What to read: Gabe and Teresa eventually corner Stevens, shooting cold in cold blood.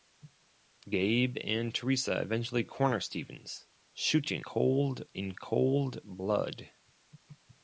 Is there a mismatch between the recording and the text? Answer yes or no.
no